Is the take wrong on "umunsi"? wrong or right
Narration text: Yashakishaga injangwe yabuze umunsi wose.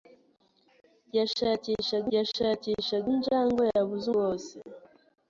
wrong